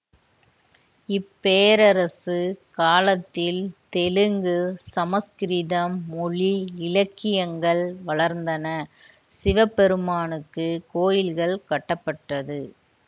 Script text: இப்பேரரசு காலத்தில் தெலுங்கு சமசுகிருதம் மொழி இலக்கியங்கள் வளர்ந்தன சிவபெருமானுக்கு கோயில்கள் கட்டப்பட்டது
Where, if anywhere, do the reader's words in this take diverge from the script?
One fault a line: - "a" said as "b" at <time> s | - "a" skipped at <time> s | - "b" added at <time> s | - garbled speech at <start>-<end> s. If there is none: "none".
none